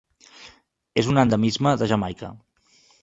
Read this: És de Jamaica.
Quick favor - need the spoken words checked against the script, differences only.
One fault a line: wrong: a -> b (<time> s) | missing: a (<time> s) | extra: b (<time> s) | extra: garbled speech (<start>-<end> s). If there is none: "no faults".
extra: un endemisme (1.1 s)